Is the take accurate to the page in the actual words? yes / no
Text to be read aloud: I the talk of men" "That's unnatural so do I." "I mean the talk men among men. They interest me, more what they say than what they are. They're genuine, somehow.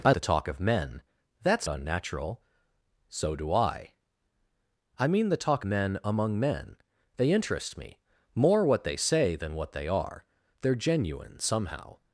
yes